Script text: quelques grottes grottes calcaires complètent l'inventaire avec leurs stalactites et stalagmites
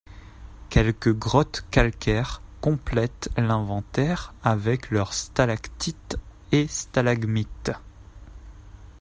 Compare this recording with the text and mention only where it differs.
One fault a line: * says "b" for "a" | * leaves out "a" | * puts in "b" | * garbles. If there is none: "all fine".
* leaves out "grottes"